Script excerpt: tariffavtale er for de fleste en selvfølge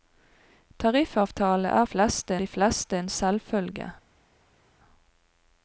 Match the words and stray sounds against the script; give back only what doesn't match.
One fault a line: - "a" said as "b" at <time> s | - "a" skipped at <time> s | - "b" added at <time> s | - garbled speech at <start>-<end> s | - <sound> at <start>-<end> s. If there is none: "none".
- "for" said as "fleste" at 1.9 s